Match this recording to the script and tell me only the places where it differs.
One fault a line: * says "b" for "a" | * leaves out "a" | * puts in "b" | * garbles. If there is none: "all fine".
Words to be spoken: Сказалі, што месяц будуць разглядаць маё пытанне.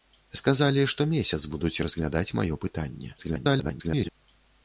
* garbles